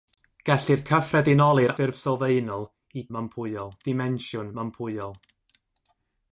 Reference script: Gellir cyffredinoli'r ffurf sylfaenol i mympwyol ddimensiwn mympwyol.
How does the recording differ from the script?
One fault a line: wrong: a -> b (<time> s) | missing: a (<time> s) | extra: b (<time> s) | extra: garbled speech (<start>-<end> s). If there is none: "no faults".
no faults